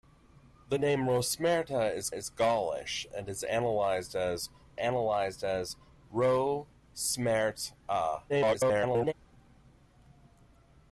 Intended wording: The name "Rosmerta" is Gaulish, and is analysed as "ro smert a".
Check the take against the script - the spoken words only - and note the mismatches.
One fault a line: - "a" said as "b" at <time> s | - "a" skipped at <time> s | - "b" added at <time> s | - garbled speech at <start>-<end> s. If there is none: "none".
- "is" added at 2.1 s
- "analysed as" added at 4.8 s
- garbled speech at 8.3-9.1 s